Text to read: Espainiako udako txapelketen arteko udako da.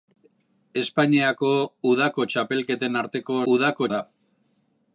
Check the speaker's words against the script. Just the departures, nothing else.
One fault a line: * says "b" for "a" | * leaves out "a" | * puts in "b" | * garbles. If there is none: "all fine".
all fine